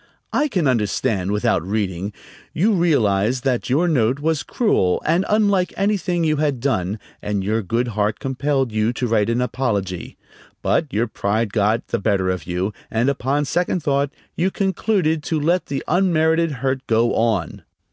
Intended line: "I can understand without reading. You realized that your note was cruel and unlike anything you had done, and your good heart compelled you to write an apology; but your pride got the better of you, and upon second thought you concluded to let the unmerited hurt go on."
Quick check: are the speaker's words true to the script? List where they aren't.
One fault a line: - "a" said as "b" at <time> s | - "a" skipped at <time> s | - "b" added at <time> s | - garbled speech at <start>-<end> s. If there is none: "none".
none